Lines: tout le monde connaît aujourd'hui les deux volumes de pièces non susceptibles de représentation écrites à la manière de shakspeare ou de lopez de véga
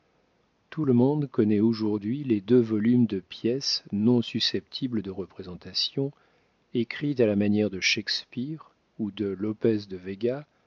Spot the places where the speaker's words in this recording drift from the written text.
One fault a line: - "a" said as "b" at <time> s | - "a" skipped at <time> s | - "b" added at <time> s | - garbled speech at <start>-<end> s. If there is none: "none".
none